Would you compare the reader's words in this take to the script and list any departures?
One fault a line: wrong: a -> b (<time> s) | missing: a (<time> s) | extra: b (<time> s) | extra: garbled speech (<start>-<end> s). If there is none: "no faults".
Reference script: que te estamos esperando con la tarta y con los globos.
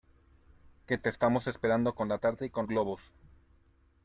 missing: los (2.6 s)